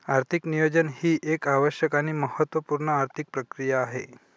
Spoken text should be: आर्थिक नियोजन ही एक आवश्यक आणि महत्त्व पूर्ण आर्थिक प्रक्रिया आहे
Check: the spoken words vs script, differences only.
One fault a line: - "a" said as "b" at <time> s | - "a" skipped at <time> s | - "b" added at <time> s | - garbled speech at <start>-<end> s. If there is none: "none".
none